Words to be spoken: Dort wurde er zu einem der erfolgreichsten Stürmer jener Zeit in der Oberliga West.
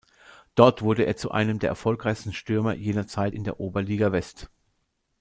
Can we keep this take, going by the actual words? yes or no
yes